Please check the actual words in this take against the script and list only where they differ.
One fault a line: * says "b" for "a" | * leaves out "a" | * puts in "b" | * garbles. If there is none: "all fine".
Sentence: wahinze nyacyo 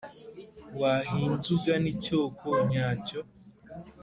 * puts in "ugana icyoko"